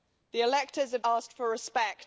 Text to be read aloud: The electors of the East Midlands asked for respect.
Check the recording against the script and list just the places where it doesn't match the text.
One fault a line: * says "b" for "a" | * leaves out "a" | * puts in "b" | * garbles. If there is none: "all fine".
* leaves out "the East Midlands"